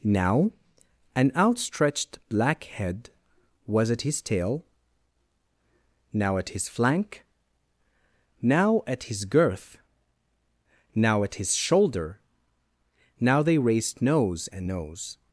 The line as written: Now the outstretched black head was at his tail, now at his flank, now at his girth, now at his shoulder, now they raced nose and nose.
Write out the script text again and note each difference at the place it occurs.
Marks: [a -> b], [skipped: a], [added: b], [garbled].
Now [the -> an] outstretched black head was at his tail, now at his flank, now at his girth, now at his shoulder, now they raced nose and nose.